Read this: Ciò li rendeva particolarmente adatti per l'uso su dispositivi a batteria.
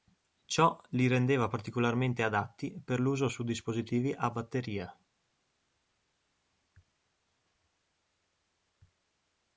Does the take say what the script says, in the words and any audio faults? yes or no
yes